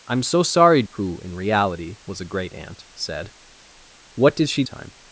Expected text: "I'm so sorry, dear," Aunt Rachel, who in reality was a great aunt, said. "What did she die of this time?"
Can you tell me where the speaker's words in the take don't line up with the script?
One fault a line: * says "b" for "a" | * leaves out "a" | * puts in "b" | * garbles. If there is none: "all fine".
* leaves out "dear Aunt Rachel"
* leaves out "die of this"